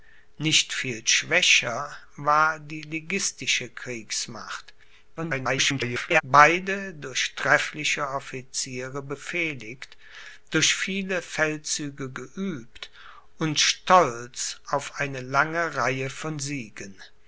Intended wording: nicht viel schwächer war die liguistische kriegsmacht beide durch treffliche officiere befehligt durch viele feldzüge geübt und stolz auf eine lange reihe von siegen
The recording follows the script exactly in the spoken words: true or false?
false